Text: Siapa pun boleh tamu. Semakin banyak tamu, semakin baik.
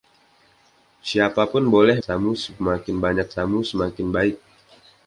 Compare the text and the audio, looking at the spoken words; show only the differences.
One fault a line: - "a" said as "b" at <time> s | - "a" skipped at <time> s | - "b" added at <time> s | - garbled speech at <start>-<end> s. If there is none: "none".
none